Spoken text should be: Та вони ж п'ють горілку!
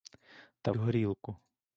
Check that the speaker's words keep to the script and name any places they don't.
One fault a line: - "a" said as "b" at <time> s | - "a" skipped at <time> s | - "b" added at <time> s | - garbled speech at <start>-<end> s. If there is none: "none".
- "вони ж п'ють" skipped at 0.7 s